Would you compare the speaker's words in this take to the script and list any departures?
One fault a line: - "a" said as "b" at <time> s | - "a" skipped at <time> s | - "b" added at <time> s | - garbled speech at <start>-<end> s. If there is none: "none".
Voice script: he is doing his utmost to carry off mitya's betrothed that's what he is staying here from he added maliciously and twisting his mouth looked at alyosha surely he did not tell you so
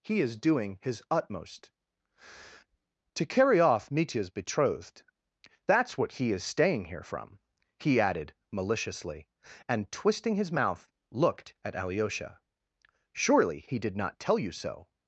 none